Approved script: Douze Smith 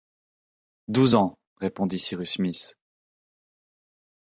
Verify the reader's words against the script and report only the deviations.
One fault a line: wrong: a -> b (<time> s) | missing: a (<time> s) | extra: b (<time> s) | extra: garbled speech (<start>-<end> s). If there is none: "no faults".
extra: ans répondit Cyrus (1.1 s)